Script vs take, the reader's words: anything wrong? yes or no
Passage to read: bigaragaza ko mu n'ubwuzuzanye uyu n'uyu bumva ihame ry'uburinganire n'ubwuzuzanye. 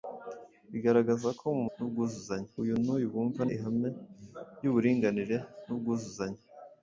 no